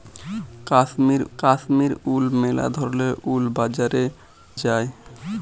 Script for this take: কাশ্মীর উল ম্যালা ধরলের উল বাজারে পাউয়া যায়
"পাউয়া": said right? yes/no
no